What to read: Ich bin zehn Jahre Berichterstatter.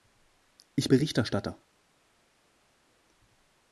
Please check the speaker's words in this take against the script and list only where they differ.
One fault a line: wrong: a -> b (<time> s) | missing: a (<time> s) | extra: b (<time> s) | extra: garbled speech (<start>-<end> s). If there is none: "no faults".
missing: bin zehn Jahre (0.9 s)